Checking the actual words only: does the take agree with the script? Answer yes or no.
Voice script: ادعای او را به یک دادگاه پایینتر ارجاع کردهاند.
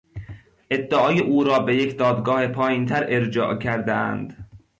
yes